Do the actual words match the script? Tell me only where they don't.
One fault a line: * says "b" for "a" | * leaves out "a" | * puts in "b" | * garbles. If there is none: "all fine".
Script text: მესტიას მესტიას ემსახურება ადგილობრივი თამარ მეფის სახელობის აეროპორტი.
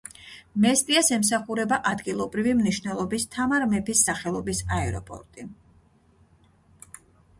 * leaves out "მესტიას"
* puts in "მნიშვნელობის"